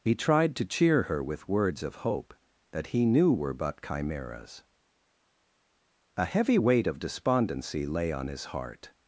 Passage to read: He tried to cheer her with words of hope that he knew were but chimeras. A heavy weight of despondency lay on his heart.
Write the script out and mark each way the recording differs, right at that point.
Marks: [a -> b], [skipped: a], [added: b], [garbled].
He tried to cheer her with words of hope that he knew were but chimeras. A heavy weight of despondency lay on his heart.